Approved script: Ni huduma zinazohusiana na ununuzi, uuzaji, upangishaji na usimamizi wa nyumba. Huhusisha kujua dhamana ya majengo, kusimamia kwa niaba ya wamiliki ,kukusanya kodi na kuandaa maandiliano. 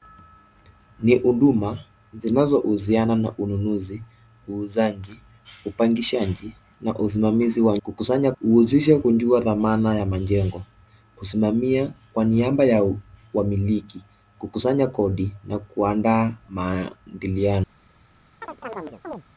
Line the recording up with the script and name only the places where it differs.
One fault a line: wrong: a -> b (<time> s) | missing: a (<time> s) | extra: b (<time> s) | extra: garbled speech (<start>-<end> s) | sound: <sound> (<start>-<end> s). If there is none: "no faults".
wrong: nyumba -> kukusanya (7.8 s)
sound: chirp (18.4-19.2 s)